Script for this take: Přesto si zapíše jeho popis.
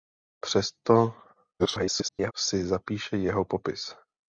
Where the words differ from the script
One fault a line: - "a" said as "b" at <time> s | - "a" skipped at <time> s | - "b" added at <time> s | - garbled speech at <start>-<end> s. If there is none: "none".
- garbled speech at 1.6-2.3 s